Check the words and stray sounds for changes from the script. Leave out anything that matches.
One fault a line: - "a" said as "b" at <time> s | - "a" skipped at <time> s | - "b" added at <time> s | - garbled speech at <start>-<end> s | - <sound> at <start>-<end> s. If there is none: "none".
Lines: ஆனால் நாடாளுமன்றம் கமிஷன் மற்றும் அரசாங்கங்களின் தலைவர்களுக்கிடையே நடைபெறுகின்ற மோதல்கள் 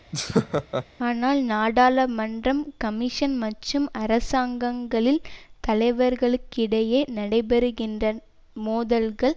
- laugh at 0.1-0.9 s